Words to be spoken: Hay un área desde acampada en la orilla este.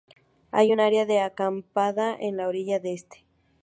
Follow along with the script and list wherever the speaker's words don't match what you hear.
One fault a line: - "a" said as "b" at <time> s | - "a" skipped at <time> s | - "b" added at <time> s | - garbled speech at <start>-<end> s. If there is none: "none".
- "desde" said as "de" at 1.1 s